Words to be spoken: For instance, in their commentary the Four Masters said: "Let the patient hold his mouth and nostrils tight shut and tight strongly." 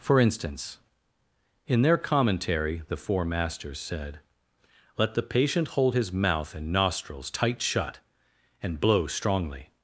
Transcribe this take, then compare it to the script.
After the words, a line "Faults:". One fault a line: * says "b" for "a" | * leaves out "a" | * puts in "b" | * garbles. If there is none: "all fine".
For instance, in their commentary the Four Masters said: "Let the patient hold his mouth and nostrils tight shut and blow strongly."
Faults:
* says "blow" for "tight"